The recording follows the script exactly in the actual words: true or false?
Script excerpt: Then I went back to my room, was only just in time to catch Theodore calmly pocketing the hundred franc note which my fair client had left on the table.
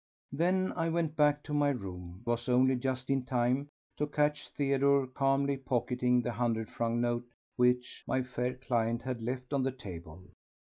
true